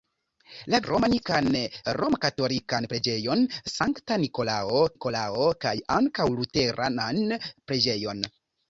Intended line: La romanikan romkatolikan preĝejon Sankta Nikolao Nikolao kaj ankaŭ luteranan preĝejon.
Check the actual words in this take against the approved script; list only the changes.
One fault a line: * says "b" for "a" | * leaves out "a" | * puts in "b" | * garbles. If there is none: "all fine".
all fine